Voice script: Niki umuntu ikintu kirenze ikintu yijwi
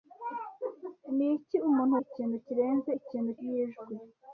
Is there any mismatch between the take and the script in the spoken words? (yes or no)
no